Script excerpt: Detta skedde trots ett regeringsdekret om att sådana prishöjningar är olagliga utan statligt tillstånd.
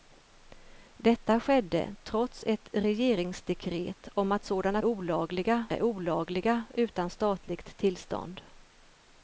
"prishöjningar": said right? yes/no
no